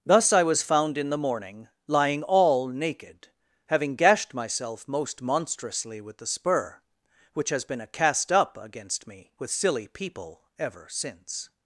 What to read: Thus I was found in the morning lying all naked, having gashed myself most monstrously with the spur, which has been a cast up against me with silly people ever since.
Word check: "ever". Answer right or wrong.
right